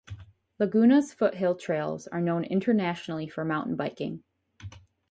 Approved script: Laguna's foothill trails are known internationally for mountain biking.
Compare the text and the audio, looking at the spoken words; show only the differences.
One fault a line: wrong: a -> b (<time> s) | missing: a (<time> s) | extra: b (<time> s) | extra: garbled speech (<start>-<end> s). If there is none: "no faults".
no faults